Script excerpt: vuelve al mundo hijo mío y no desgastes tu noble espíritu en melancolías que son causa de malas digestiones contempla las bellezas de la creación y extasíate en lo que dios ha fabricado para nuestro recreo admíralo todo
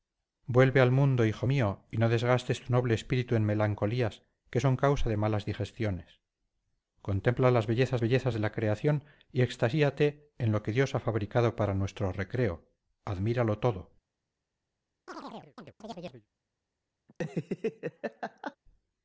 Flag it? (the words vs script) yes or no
yes